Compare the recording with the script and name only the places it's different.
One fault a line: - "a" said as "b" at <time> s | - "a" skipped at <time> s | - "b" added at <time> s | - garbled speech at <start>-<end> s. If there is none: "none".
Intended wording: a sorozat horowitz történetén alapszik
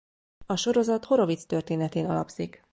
none